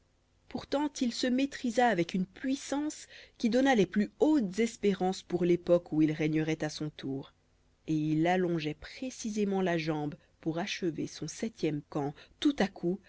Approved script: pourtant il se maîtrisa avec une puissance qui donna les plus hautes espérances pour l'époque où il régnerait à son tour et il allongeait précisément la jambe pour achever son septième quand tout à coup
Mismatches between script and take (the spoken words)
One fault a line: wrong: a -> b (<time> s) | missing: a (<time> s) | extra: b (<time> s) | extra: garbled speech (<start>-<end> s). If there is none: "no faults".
no faults